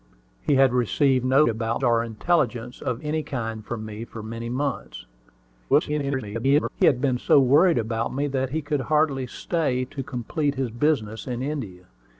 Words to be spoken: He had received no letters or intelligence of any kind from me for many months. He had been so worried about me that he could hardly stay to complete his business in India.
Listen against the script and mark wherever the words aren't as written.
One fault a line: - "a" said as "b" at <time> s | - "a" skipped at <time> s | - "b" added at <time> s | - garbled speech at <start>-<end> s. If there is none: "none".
- "letters" said as "about" at 1.5 s
- garbled speech at 5.7-6.7 s